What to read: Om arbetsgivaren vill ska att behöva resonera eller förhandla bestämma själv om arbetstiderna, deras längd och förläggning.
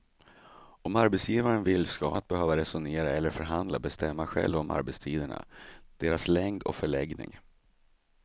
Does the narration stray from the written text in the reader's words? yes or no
no